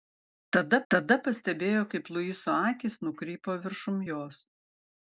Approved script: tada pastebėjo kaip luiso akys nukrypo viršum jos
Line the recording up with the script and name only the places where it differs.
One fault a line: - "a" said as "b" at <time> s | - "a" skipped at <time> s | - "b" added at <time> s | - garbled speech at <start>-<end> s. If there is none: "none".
- "tada" added at 0.9 s